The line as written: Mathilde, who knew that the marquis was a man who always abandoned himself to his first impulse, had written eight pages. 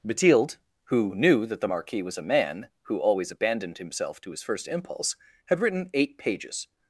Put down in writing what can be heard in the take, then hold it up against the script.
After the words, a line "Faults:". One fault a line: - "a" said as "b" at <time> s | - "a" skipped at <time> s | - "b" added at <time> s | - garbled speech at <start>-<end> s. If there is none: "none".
Mathilde, who knew that the marquis was a man who always abandoned himself to his first impulse, had written eight pages.
Faults:
none